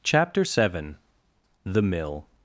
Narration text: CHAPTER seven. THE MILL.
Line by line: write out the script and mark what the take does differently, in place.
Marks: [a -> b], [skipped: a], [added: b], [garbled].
CHAPTER seven. THE MILL.